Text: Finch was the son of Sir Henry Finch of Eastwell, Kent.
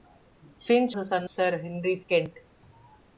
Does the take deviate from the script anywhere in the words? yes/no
yes